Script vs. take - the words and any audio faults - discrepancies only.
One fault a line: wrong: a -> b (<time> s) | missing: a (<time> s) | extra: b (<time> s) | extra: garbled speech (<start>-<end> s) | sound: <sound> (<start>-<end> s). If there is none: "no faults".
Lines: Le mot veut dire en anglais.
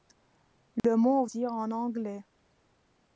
sound: dropout (0.8-0.8 s)
missing: veut (1.2 s)